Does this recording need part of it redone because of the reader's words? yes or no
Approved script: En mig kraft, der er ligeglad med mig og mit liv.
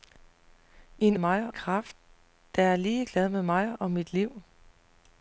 no